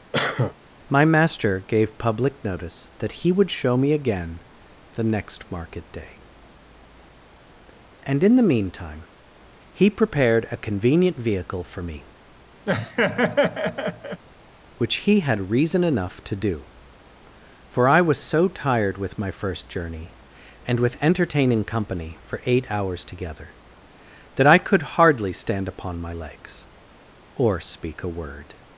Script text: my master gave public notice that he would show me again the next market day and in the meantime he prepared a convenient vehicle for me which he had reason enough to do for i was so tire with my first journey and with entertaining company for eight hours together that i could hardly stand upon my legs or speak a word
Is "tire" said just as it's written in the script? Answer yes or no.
no